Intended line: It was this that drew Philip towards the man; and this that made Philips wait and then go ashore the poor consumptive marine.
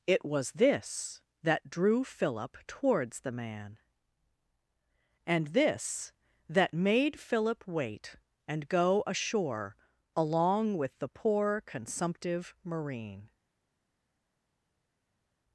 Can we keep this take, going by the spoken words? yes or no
no